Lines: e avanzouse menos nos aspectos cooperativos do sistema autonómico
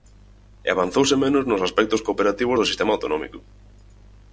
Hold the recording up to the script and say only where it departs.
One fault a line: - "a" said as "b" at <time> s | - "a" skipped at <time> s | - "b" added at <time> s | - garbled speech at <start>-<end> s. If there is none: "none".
none